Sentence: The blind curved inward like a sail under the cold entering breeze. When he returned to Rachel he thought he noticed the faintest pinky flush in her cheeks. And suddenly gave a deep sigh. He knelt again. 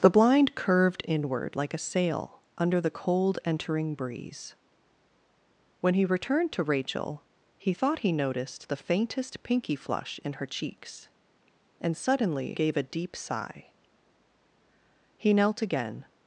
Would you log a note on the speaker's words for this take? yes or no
no